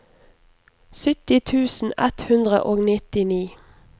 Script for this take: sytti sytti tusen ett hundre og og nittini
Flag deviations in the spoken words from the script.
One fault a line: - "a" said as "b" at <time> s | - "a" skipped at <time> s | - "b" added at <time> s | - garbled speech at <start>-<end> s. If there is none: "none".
- "sytti" skipped at 1.4 s
- "og" skipped at 2.8 s